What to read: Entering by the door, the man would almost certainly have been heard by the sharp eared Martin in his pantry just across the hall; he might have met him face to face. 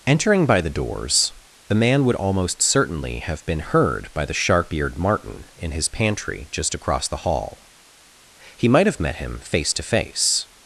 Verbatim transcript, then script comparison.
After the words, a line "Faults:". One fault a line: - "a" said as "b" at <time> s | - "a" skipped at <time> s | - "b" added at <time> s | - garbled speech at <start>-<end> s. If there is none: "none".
Entering by the doors, the man would almost certainly have been heard by the sharp eared Martin in his pantry just across the hall; he might have met him face to face.
Faults:
- "door" said as "doors" at 0.7 s